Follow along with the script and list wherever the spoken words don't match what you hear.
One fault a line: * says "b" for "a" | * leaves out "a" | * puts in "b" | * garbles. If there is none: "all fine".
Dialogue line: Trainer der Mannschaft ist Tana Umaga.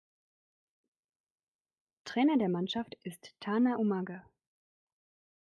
all fine